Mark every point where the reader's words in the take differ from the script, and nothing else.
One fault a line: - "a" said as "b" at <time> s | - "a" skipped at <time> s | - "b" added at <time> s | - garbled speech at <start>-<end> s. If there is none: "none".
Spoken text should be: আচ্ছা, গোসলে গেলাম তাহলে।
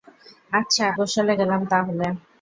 none